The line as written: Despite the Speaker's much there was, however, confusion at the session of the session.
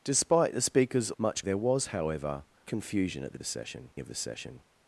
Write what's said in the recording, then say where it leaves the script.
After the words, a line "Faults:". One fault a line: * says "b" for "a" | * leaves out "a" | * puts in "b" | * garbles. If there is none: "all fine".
Despite the Speaker's much there was, however, confusion at the session of the session.
Faults:
all fine